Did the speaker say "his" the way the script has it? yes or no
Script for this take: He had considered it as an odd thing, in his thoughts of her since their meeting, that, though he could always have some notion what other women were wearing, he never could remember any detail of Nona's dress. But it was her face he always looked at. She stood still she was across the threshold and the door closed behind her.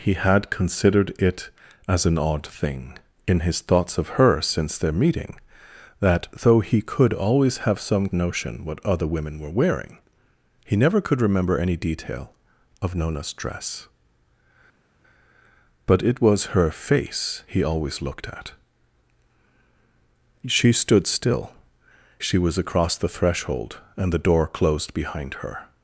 yes